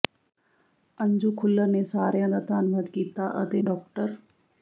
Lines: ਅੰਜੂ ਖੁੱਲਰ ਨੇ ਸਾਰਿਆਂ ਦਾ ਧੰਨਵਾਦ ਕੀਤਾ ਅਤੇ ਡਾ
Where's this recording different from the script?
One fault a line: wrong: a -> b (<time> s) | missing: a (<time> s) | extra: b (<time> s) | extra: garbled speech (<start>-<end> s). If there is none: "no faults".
no faults